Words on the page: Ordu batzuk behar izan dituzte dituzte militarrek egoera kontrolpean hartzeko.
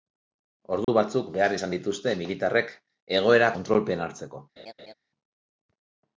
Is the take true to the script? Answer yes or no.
no